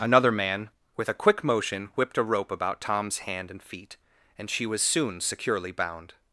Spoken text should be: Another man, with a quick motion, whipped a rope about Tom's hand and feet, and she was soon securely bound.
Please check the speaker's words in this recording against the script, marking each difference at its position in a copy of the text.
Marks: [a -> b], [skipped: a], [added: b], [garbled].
Another man, with a quick motion, whipped a rope about Tom's hand and feet, and she was soon securely bound.